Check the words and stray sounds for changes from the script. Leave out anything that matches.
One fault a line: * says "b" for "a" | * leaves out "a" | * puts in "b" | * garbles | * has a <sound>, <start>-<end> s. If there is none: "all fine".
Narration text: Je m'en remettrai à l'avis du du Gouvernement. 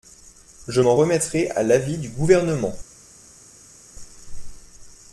* leaves out "du"